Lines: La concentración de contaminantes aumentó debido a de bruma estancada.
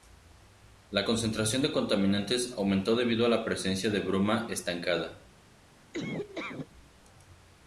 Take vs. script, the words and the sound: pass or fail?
fail